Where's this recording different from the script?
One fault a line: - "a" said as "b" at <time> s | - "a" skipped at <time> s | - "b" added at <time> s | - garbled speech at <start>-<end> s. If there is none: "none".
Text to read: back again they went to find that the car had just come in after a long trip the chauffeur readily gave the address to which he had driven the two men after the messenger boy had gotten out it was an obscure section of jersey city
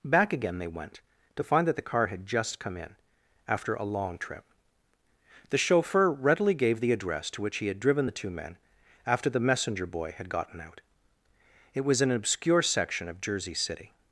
none